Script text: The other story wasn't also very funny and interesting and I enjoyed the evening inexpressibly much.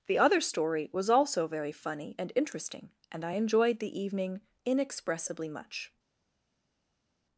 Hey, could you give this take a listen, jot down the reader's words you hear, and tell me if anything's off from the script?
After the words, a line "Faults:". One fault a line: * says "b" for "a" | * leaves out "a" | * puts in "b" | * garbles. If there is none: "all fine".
The other story was also very funny and interesting and I enjoyed the evening inexpressibly much.
Faults:
* says "was" for "wasn't"